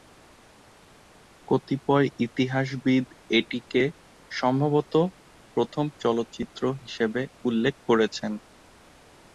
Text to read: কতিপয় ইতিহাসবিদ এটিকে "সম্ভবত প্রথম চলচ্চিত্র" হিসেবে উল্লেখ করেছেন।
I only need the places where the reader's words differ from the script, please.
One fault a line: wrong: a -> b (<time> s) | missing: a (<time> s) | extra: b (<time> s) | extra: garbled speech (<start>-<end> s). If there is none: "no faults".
no faults